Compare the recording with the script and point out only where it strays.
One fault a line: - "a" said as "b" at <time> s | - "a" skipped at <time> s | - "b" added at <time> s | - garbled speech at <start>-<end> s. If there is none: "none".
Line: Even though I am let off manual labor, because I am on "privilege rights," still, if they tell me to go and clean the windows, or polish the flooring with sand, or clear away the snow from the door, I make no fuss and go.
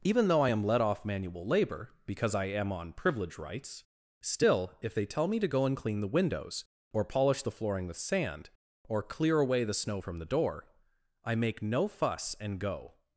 none